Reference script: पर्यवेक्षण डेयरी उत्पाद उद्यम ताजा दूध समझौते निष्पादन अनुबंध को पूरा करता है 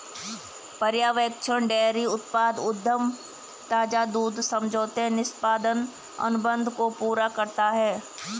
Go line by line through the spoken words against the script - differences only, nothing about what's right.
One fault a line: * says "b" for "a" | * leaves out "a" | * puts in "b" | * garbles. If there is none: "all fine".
all fine